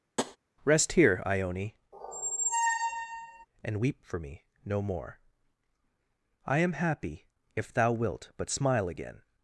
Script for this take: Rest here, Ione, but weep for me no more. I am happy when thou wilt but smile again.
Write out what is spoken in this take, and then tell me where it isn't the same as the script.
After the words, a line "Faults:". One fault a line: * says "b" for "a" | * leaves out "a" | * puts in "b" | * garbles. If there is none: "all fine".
Rest here, Ione, and weep for me no more. I am happy if thou wilt but smile again.
Faults:
* says "and" for "but"
* says "if" for "when"